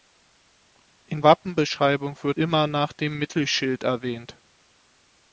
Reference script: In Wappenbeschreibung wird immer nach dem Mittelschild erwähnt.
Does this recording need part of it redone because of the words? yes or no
no